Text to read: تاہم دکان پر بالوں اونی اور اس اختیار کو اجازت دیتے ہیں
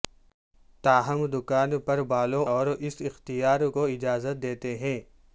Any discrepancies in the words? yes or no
yes